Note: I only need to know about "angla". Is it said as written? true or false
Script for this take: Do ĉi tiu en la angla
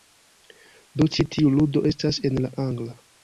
true